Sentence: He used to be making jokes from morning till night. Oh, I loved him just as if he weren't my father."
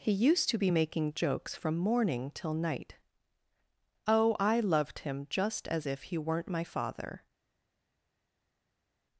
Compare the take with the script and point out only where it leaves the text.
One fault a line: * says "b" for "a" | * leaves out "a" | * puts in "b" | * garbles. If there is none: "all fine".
all fine